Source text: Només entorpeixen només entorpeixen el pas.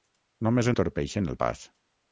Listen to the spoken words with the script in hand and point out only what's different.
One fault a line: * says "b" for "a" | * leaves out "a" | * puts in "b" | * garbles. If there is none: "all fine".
* leaves out "només entorpeixen"